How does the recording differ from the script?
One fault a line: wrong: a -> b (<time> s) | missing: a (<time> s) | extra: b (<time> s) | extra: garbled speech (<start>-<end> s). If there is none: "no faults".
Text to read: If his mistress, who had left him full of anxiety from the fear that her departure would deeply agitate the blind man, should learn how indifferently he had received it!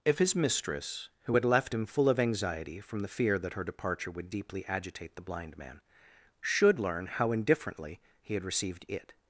no faults